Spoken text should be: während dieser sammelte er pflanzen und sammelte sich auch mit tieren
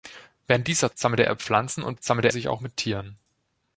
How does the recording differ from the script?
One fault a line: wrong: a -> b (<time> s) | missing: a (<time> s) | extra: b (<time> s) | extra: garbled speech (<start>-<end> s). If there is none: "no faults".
no faults